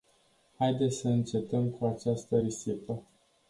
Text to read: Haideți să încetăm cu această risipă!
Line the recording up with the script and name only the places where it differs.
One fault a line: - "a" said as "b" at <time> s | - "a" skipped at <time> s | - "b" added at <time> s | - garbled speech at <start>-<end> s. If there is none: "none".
none